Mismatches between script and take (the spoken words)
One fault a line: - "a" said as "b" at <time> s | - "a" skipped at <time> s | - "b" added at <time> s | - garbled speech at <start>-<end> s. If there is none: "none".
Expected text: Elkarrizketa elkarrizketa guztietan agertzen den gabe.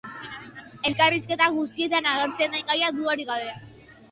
- "elkarrizketa" skipped at 1.5 s
- "gaia dudarik" added at 2.7 s